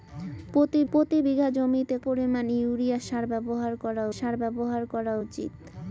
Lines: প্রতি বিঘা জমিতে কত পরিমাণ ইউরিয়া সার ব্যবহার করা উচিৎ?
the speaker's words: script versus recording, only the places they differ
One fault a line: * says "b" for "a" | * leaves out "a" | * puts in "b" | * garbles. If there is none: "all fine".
* puts in "প্রতি"
* leaves out "কত"
* puts in "সার ব্যবহার করা"